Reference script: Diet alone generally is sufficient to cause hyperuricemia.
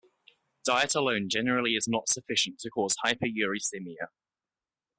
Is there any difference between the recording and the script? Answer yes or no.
yes